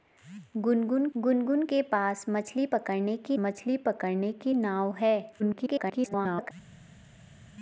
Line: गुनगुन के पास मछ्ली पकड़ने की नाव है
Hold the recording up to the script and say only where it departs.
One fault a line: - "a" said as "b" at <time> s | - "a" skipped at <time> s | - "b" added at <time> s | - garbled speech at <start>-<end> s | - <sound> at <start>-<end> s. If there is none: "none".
- "गुनगुन" added at 1.2 s
- "मछ्ली पकड़ने की" added at 3.4 s
- garbled speech at 5.4-6.5 s